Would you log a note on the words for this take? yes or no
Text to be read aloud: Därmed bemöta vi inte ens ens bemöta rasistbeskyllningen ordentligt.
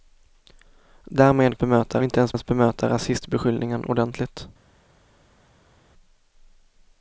no